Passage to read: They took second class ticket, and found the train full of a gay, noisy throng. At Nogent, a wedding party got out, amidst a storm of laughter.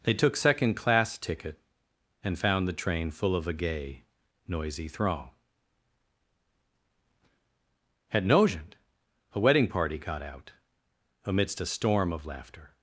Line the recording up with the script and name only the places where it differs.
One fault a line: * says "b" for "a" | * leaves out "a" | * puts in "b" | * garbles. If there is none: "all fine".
all fine